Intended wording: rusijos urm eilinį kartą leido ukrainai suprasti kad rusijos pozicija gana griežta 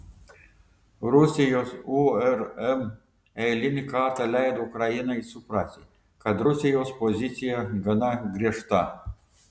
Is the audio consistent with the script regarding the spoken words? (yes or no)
yes